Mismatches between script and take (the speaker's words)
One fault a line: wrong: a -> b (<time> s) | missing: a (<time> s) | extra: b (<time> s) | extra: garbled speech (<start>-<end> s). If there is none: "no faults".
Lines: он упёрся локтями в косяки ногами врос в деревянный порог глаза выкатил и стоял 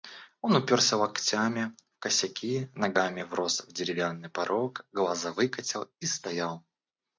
no faults